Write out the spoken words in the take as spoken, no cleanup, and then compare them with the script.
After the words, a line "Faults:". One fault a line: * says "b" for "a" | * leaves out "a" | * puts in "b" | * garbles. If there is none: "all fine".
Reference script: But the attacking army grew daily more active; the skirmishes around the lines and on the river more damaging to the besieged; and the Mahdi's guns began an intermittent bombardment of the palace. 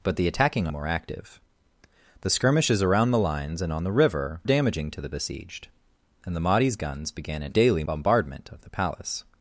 But the attacking more active; the skirmishes around the lines and on the river damaging to the besieged; and the Mahdi's guns began an daily bombardment of the palace.
Faults:
* leaves out "army grew daily"
* leaves out "more"
* says "daily" for "intermittent"